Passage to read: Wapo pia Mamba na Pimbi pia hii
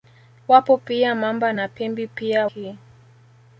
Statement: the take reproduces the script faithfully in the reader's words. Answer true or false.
true